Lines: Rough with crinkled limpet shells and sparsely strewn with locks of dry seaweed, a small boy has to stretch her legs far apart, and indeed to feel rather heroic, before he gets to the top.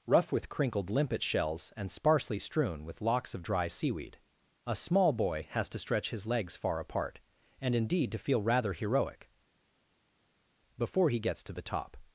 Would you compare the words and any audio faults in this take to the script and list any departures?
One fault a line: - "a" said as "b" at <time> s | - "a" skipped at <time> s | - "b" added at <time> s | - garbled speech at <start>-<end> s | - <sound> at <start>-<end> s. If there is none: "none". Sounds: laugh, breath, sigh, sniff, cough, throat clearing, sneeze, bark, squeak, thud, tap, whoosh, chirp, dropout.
- "her" said as "his" at 6.1 s